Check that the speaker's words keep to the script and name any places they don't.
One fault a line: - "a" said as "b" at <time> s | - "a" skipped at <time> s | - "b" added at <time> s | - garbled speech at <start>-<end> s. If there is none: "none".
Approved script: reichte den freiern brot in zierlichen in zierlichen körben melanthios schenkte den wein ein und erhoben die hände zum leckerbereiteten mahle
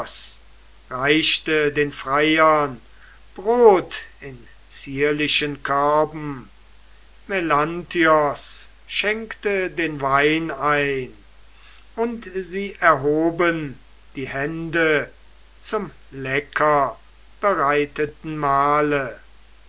- "in zierlichen" skipped at 5.6 s
- "sie" added at 12.3 s